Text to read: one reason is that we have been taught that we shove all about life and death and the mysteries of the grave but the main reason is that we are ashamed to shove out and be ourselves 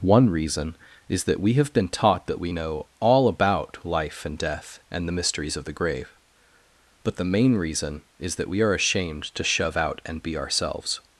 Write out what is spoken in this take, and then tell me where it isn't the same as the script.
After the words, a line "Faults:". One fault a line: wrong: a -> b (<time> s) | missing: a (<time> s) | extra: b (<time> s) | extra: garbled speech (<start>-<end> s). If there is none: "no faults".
one reason is that we have been taught that we know all about life and death and the mysteries of the grave but the main reason is that we are ashamed to shove out and be ourselves
Faults:
wrong: shove -> know (2.5 s)